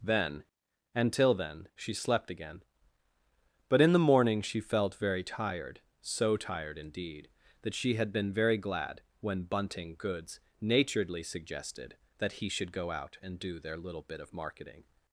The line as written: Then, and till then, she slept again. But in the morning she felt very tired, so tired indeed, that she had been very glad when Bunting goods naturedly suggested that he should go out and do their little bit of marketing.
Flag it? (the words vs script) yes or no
no